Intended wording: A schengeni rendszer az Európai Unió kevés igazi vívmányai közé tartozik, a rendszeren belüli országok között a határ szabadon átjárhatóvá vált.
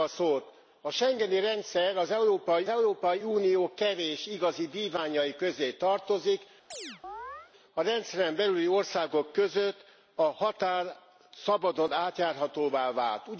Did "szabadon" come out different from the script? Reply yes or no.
no